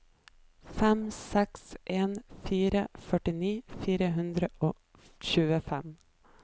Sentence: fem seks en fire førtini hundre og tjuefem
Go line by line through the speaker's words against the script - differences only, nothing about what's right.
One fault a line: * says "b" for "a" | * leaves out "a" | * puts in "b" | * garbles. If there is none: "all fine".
* puts in "fire"